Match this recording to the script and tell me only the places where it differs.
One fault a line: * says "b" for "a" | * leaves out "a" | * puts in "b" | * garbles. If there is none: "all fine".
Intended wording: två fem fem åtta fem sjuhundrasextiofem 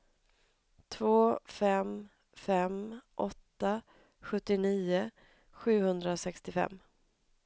* says "sjuttionio" for "fem"